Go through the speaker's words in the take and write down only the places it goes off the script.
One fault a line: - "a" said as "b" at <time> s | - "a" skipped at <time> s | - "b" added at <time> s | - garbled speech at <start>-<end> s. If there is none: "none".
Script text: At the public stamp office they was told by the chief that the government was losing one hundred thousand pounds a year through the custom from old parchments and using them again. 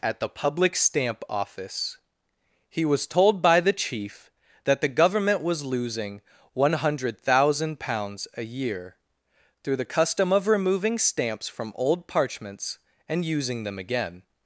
- "they" said as "he" at 2.7 s
- "of removing stamps" added at 10.3 s